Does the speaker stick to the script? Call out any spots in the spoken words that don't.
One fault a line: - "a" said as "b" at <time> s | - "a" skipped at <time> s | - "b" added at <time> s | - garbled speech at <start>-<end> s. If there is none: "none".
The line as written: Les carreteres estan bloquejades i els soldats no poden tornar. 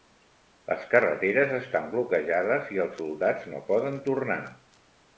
none